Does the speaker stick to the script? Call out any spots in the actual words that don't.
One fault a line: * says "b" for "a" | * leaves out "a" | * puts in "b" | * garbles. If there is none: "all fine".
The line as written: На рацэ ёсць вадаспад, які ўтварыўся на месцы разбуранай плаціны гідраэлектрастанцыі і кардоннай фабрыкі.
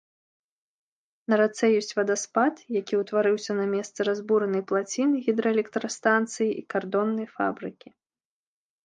all fine